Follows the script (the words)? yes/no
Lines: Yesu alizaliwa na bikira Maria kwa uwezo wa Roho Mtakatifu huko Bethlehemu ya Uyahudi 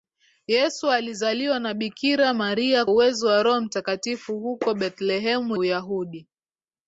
no